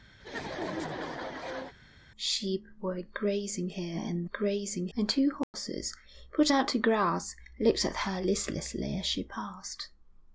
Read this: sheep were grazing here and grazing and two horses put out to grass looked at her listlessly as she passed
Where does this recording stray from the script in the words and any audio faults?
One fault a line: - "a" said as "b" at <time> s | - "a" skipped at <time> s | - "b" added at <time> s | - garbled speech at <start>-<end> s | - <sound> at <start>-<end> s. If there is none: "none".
- laugh at 0.2-1.7 s
- dropout at 5.4-5.5 s